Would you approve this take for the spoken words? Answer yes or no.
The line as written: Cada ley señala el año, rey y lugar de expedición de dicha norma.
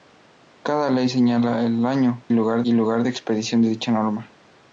no